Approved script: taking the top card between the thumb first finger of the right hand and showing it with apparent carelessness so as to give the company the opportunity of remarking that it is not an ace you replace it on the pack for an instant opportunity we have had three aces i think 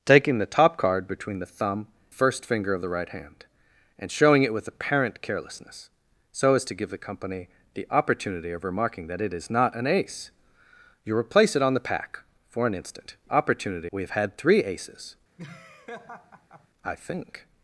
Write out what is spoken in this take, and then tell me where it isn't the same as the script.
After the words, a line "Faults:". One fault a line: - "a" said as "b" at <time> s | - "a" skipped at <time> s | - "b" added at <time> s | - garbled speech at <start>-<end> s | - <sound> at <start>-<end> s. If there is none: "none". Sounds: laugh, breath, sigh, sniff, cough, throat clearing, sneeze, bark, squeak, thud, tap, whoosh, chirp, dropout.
taking the top card between the thumb first finger of the right hand and showing it with apparent carelessness so as to give the company the opportunity of remarking that it is not an ace you replace it on the pack for an instant opportunity we have had three aces i think
Faults:
- laugh at 15.4-16.7 s